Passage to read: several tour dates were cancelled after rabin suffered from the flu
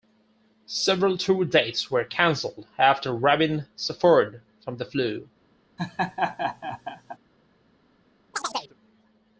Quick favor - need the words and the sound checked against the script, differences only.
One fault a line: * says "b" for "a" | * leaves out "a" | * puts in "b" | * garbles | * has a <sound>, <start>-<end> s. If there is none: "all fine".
* has a laugh, 5.8-7.2 s
* has a chirp, 8.3-8.7 s